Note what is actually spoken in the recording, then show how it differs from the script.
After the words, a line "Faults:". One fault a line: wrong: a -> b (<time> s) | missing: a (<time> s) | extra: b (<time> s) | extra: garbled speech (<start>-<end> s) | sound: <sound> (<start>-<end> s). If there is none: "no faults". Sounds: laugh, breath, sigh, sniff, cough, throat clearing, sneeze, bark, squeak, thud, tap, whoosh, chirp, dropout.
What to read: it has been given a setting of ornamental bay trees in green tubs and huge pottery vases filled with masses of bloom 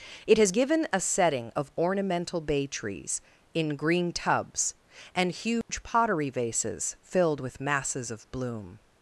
it has given a setting of ornamental bay trees in green tubs and huge pottery vases filled with masses of bloom
Faults:
missing: been (0.5 s)
sound: dropout (5.6-5.7 s)